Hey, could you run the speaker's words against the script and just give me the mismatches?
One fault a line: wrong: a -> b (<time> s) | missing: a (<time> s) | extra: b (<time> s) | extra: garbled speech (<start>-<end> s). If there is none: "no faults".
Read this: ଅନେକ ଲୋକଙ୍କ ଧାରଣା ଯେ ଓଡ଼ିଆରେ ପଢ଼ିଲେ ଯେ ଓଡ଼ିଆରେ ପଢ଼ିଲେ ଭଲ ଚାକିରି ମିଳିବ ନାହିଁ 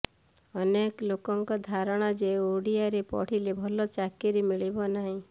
missing: ଯେ ଓଡ଼ିଆରେ ପଢ଼ିଲେ (3.5 s)